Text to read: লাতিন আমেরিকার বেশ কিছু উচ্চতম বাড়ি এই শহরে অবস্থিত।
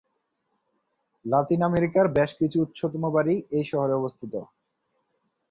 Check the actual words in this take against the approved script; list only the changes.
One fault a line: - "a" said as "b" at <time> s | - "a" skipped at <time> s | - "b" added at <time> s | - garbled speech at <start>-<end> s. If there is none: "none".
none